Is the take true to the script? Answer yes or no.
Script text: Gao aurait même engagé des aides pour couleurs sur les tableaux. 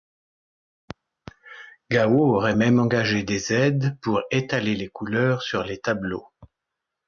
no